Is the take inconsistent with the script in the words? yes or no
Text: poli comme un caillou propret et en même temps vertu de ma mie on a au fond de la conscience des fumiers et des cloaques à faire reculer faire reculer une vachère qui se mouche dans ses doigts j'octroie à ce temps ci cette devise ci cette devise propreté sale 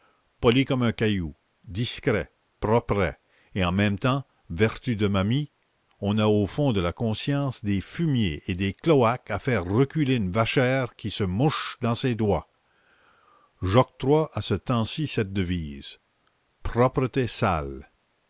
yes